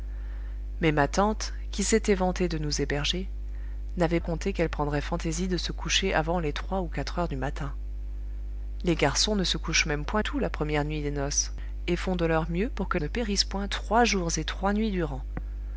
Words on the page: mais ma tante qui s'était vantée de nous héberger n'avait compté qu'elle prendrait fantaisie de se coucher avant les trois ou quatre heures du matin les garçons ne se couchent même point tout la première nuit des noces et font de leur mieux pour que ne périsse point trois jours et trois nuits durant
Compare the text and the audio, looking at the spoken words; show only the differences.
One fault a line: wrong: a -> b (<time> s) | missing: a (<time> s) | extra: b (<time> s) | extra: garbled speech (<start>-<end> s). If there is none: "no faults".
no faults